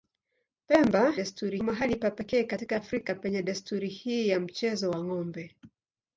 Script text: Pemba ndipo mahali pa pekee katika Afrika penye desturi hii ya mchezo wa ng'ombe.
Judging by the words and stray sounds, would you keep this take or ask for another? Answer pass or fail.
fail